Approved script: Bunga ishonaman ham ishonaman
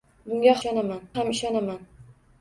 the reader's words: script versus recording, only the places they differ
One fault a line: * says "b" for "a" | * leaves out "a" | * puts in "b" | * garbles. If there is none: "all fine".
all fine